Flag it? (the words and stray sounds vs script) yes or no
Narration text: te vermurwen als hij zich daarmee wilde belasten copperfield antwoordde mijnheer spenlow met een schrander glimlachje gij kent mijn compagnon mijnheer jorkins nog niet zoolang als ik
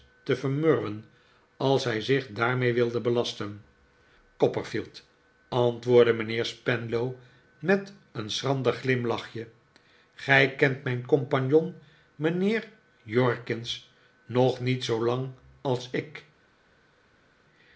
no